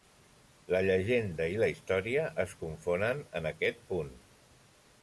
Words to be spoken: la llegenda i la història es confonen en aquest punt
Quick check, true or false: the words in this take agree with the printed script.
true